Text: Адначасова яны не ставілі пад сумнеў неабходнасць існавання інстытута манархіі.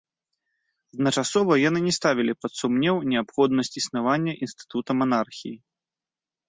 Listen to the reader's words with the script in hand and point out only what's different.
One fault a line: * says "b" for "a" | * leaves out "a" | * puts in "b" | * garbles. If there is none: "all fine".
all fine